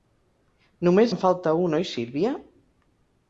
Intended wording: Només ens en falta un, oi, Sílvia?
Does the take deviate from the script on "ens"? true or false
true